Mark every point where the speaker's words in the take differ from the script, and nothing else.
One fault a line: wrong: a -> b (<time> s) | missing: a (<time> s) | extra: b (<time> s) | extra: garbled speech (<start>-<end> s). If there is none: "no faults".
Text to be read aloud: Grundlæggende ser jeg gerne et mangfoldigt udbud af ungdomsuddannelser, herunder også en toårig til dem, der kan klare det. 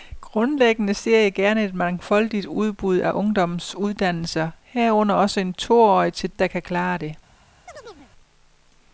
missing: dem (6.3 s)